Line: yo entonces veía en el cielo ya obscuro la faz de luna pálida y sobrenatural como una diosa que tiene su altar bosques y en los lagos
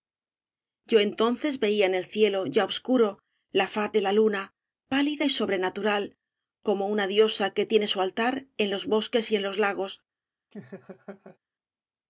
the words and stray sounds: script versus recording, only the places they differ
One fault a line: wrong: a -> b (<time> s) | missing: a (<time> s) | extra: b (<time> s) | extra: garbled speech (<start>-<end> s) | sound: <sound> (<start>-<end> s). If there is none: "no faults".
extra: la (4.0 s)
extra: en los (8.6 s)
sound: laugh (10.5-11.4 s)